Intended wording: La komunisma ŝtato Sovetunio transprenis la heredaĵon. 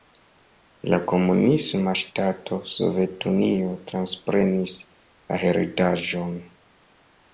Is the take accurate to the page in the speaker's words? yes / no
yes